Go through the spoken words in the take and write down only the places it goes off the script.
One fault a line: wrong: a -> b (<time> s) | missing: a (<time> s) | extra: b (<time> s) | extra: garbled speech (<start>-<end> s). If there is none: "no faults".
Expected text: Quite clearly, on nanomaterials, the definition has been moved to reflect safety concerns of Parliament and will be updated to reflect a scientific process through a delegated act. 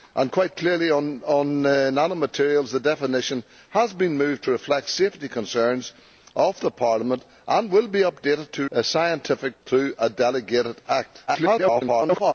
missing: reflect (8.7 s)
missing: process (9.6 s)
extra: garbled speech (11.3-12.3 s)